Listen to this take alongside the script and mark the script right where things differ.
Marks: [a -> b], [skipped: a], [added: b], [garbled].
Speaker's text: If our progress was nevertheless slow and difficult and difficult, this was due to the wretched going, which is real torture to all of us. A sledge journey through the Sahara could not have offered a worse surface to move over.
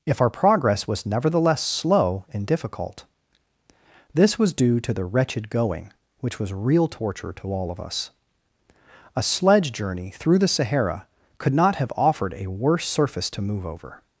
If our progress was nevertheless slow and difficult [skipped: and difficult,] this was due to the wretched going, which [is -> was] real torture to all of us. A sledge journey through the Sahara could not have offered a worse surface to move over.